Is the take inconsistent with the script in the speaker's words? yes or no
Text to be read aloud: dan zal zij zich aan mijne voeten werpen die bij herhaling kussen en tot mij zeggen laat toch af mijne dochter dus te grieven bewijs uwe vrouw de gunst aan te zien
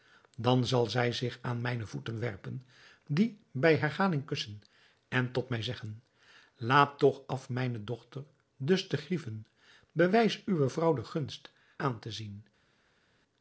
no